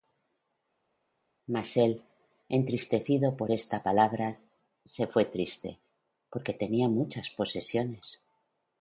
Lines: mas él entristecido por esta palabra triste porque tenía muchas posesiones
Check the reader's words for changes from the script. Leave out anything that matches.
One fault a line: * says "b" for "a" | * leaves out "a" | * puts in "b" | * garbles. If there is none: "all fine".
* puts in "se fué"